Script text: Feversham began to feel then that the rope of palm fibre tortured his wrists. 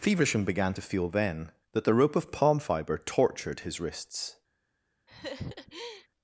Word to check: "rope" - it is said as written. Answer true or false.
true